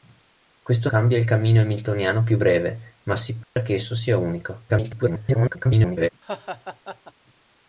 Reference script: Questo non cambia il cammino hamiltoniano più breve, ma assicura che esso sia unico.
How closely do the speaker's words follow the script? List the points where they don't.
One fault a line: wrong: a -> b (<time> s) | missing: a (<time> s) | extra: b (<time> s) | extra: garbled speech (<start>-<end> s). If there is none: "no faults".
missing: non (0.9 s)
extra: garbled speech (4.7-6.1 s)